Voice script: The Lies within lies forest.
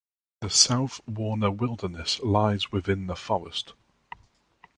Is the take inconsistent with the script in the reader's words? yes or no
yes